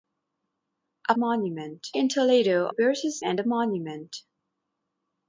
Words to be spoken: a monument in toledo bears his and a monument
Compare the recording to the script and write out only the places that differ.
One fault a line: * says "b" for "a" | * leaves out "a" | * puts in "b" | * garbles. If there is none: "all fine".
all fine